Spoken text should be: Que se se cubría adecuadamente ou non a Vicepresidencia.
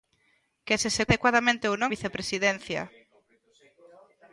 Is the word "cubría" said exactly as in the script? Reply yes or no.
no